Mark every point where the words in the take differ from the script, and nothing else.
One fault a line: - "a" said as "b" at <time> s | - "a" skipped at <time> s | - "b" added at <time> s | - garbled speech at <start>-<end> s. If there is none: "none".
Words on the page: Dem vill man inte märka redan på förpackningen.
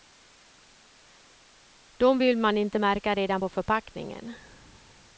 none